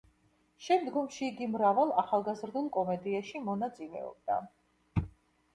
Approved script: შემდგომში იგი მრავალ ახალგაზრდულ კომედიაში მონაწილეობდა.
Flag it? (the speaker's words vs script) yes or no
no